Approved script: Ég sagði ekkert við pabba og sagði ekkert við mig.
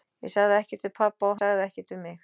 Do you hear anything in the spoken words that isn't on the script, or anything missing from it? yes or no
no